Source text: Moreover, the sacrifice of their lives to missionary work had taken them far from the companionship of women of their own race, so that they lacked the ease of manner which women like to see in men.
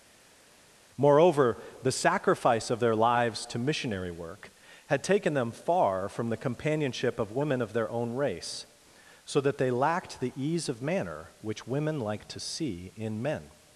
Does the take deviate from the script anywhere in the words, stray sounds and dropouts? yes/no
no